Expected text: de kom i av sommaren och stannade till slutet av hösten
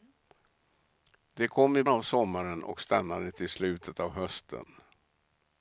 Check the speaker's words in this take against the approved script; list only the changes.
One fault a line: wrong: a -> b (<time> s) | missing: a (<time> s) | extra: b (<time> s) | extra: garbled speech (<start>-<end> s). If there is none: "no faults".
no faults